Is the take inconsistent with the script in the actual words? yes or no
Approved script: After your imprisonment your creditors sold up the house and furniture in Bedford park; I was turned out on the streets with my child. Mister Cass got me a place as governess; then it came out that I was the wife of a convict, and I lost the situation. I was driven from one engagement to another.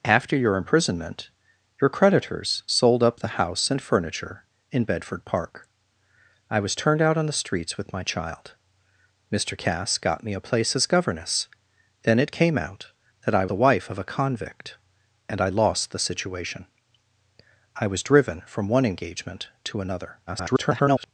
yes